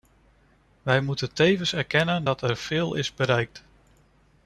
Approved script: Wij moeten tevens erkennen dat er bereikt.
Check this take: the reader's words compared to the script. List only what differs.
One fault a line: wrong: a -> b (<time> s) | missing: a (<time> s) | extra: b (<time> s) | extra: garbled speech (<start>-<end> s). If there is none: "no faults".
extra: veel is (2.6 s)